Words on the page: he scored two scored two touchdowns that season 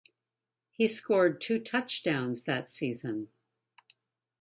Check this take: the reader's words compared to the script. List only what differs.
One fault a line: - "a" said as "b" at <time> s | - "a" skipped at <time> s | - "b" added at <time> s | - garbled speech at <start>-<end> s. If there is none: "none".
- "scored two" skipped at 1.6 s